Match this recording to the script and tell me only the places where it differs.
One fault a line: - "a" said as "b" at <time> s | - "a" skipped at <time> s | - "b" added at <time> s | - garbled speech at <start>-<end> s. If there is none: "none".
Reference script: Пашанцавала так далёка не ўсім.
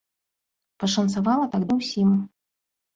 - "далёка" skipped at 1.7 s